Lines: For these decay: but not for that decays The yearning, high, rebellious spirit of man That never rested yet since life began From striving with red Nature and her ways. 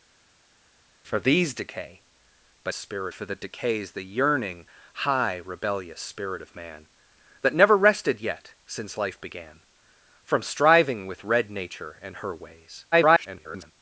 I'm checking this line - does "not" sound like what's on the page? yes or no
no